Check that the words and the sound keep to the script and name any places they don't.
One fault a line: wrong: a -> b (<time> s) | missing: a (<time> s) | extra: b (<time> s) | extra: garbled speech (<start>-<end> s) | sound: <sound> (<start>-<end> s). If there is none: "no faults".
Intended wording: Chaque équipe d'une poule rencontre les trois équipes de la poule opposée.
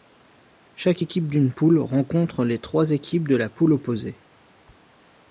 no faults